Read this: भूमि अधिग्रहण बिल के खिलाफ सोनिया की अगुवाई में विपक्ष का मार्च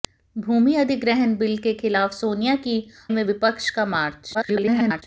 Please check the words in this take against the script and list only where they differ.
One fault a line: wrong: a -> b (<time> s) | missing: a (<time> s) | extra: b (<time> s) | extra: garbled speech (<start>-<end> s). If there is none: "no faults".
missing: अगुवाई (2.8 s)
extra: garbled speech (4.3-5.0 s)